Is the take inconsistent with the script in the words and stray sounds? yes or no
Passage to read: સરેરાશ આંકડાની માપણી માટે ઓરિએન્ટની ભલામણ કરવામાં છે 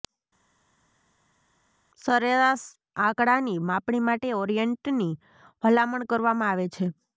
yes